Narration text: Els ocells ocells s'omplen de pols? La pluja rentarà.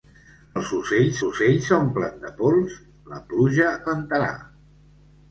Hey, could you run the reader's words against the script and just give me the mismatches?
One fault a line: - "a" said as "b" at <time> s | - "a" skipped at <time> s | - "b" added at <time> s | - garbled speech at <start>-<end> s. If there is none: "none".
none